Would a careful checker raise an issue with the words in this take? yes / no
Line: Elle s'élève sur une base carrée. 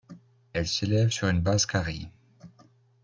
no